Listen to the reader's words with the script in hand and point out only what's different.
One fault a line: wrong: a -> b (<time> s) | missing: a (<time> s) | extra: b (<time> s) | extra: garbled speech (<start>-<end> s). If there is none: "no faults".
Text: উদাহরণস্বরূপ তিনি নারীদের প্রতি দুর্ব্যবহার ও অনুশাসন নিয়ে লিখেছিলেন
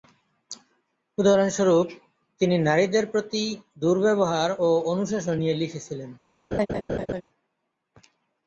no faults